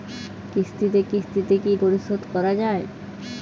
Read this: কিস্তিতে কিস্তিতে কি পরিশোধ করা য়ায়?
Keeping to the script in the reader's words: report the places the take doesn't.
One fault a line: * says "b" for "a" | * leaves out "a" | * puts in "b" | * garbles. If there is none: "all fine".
all fine